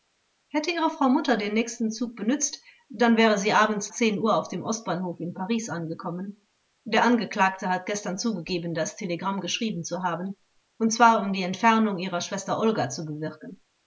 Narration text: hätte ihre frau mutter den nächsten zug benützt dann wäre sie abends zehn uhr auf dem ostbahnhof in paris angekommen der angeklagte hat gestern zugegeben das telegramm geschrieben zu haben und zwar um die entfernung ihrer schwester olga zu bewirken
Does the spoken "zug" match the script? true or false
true